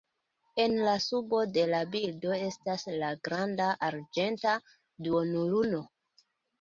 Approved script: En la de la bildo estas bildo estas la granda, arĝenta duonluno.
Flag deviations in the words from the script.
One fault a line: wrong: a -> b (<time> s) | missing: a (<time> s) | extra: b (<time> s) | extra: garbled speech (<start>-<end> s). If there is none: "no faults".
extra: subo (1.1 s)
missing: bildo estas (2.9 s)